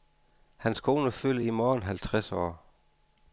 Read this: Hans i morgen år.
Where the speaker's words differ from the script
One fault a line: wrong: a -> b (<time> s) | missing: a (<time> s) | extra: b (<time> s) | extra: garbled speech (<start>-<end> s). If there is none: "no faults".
extra: kone fylder (0.8 s)
extra: halvtreds (1.8 s)